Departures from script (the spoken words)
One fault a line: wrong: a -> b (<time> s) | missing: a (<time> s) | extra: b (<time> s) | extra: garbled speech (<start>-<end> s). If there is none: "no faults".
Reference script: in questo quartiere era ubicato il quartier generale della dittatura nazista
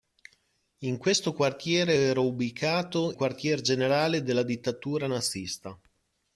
missing: il (3.1 s)